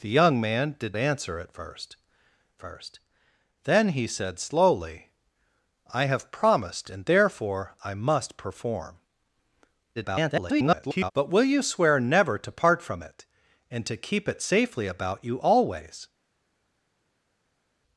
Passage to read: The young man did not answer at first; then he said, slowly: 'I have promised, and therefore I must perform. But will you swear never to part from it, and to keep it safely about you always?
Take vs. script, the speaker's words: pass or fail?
fail